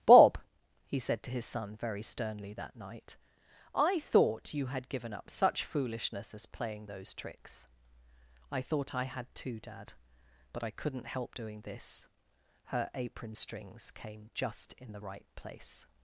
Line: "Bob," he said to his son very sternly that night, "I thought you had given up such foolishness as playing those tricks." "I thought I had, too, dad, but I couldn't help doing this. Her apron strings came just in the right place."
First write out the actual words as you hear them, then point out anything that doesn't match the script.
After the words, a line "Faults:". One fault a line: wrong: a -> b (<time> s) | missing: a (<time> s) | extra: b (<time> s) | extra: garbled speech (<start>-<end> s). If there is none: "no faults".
"Bob," he said to his son very sternly that night, "I thought you had given up such foolishness as playing those tricks." "I thought I had, too, dad, but I couldn't help doing this. Her apron strings came just in the right place."
Faults:
no faults